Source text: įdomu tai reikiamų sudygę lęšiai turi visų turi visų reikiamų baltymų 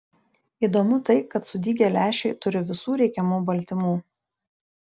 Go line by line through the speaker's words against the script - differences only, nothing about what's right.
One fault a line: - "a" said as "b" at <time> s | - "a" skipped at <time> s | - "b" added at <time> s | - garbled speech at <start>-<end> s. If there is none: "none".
- "reikiamų" said as "kad" at 1.3 s
- "turi visų" skipped at 3.0 s